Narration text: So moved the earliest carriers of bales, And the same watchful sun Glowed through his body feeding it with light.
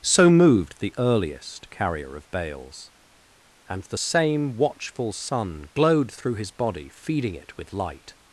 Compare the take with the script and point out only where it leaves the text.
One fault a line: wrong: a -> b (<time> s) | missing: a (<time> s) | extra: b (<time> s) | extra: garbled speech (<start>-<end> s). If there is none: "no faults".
wrong: carriers -> carrier (1.7 s)